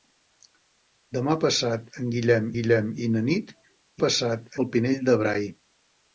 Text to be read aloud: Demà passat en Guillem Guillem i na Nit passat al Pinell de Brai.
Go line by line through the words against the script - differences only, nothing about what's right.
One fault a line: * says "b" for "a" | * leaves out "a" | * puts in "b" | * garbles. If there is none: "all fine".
all fine